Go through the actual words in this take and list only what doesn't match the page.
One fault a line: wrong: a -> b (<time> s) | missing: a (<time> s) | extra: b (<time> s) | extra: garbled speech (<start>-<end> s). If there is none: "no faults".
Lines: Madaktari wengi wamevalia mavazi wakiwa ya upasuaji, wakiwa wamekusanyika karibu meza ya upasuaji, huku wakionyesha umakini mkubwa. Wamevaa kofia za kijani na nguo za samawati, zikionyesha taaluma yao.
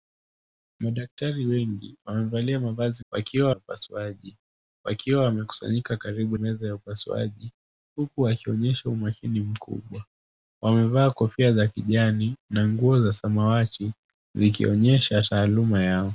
no faults